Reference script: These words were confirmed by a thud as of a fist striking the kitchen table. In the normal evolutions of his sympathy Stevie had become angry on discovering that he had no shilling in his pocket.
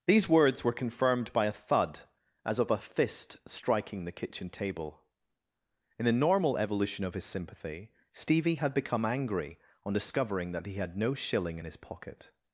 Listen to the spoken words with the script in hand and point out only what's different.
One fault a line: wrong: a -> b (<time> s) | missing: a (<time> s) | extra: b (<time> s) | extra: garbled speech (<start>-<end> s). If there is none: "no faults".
wrong: evolutions -> evolution (6.6 s)